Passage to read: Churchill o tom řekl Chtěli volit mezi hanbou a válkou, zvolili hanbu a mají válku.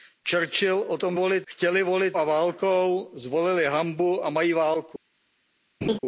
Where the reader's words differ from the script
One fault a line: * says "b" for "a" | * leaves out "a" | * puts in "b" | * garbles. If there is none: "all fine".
* says "volit" for "řekl"
* leaves out "mezi hanbou"